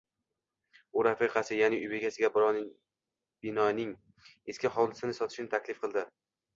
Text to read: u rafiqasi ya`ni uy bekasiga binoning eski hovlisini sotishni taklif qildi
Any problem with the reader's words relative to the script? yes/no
no